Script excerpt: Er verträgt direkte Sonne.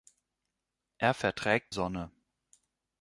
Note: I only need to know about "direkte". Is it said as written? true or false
false